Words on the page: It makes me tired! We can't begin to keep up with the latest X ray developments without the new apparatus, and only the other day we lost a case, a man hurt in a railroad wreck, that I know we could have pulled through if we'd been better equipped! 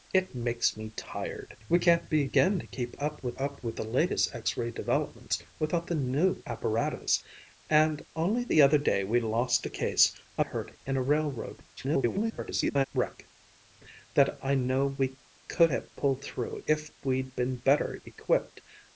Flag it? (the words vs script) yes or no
yes